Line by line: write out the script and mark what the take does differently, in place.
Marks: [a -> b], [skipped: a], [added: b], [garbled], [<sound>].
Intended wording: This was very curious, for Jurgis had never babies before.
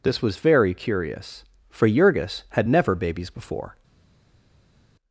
This was very curious, for Jurgis had never babies before.